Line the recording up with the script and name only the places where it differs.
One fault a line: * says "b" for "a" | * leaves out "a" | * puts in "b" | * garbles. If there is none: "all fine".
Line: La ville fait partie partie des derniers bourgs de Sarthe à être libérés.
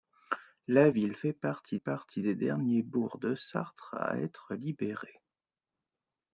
all fine